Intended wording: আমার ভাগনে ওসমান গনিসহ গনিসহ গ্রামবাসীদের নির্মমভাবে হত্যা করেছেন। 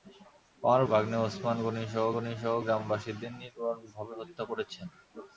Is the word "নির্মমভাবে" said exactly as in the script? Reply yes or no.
yes